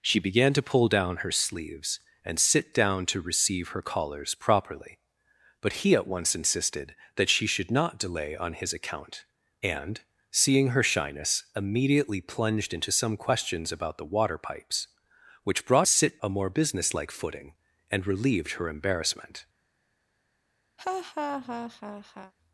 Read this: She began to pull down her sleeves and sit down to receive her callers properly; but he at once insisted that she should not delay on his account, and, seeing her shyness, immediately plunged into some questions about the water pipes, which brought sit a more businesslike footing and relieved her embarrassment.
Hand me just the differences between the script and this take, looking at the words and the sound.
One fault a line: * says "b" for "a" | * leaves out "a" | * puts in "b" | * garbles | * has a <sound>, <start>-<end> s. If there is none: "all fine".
* has a laugh, 20.8-22.3 s